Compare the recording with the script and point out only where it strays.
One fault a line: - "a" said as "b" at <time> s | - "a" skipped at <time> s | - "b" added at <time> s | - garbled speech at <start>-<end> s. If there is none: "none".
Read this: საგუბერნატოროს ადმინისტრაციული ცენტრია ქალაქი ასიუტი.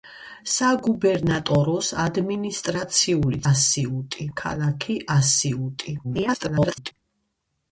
- "ცენტრია" said as "ასიუტი" at 3.5 s
- garbled speech at 6.0-6.9 s